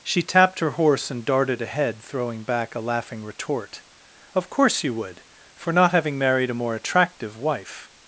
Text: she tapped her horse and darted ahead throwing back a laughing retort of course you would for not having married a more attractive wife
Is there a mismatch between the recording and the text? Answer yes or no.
no